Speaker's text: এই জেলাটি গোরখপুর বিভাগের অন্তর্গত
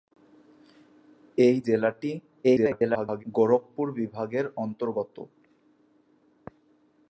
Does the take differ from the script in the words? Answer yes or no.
yes